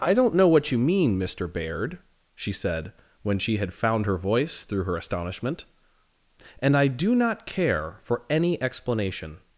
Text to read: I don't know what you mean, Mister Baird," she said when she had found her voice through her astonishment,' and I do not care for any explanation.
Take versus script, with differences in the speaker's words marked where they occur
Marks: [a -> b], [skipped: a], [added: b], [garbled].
I don't know what you mean, Mister Baird," she said when she had found her voice through her astonishment,' and I do not care for any explanation.